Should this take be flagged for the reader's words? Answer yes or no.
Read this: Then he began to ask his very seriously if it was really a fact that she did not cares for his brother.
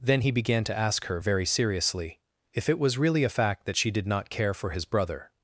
yes